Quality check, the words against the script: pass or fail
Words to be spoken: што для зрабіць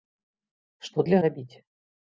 pass